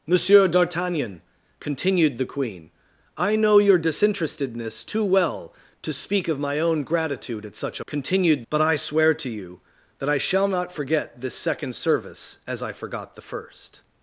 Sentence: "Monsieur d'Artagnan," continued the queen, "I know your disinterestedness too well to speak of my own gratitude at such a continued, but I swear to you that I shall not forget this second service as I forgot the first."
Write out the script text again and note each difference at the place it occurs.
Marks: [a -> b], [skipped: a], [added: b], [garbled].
"Monsieur d'Artagnan," continued the queen, "I know your disinterestedness too well to speak of my own gratitude at such a continued, but I swear to you that I shall not forget this second service as I forgot the first."